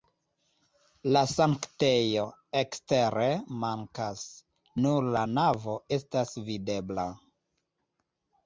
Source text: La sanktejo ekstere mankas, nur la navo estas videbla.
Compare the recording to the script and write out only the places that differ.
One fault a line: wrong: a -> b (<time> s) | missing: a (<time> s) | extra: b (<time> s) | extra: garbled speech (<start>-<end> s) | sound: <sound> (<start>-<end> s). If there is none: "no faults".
no faults